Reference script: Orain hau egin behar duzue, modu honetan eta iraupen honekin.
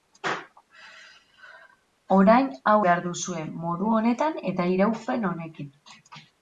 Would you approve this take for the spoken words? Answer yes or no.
no